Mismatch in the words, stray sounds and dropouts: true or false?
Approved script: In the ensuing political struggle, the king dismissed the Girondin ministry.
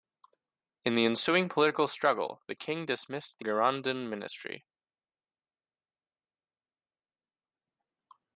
false